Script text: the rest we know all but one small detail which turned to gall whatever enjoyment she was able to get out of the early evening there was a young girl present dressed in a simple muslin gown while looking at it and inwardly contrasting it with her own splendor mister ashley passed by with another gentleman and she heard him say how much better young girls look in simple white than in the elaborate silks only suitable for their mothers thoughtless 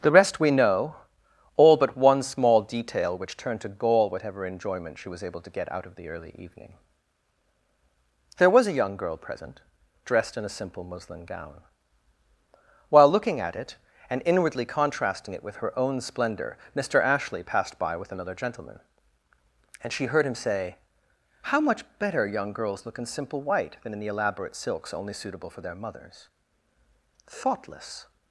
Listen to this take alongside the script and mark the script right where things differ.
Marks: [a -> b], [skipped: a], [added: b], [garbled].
the rest we know all but one small detail which turned to gall whatever enjoyment she was able to get out of the early evening there was a young girl present dressed in a simple muslin gown while looking at it and inwardly contrasting it with her own splendor mister ashley passed by with another gentleman and she heard him say how much better young girls look in simple white than in the elaborate silks only suitable for their mothers thoughtless